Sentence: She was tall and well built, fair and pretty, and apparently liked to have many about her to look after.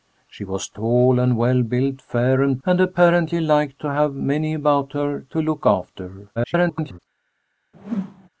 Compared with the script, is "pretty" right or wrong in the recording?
wrong